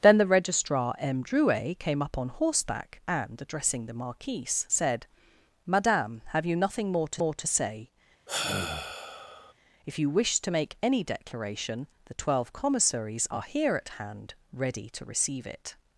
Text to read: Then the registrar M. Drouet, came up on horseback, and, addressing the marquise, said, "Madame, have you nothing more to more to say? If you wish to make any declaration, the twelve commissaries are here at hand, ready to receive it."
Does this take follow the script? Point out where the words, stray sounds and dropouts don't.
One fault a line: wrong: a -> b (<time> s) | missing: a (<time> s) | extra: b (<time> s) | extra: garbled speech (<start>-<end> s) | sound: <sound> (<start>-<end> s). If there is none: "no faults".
sound: sigh (8.3-9.5 s)